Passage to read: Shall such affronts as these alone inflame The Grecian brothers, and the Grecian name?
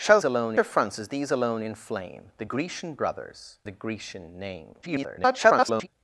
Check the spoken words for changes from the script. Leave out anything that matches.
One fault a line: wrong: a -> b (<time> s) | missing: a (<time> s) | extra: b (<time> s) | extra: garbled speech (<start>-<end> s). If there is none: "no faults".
wrong: such -> alone (0.2 s)
missing: and (3.6 s)
extra: garbled speech (4.8-5.9 s)